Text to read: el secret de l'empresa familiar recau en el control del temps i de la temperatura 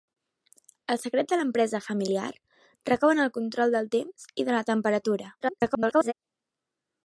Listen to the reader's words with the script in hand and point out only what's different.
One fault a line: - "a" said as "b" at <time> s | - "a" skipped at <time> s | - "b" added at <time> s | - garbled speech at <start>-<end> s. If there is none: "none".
- garbled speech at 5.4-6.1 s